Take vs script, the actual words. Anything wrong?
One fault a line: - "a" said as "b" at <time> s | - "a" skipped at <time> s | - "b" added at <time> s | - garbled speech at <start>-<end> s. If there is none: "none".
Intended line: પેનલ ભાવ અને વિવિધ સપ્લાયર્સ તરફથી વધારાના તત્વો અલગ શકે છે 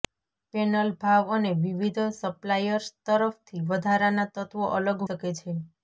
none